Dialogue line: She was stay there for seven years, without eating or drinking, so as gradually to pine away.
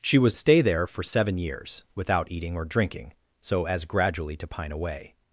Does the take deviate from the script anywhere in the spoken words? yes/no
no